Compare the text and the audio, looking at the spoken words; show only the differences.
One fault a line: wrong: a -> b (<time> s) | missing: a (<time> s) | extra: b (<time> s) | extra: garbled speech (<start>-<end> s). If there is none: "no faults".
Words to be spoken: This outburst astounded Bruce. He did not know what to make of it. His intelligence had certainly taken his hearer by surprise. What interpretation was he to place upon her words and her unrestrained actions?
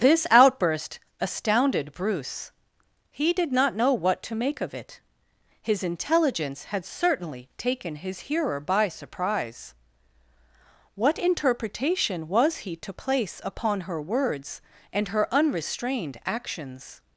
no faults